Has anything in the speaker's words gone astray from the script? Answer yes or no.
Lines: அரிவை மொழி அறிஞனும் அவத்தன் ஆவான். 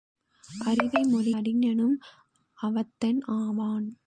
no